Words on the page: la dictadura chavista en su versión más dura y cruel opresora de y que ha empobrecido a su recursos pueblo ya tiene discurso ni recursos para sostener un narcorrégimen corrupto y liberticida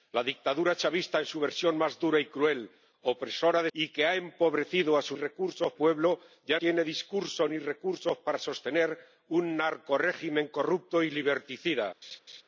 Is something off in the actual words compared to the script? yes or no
no